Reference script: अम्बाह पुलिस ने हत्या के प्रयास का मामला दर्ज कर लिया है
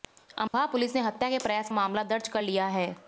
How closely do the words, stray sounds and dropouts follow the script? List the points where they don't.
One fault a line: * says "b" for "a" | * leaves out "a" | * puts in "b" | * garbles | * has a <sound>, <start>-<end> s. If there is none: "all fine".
* has a dropout, 0.5-0.5 s
* leaves out "का"